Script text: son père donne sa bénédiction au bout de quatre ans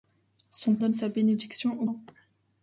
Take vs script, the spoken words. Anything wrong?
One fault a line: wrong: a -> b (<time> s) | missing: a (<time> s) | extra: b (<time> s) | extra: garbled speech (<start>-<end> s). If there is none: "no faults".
missing: père (0.8 s)
missing: bout de quatre (1.8 s)